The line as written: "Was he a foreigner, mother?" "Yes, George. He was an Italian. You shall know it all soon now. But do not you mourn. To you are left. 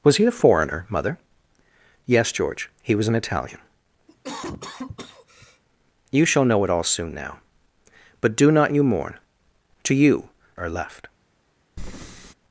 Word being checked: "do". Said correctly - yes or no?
yes